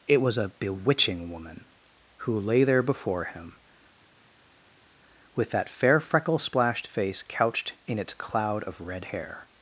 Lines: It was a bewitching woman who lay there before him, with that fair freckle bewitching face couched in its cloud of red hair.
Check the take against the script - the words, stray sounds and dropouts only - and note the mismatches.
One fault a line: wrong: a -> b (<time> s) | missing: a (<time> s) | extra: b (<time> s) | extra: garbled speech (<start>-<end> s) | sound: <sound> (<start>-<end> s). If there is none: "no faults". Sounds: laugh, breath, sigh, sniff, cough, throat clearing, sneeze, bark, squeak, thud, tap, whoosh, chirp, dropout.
wrong: bewitching -> splashed (6.4 s)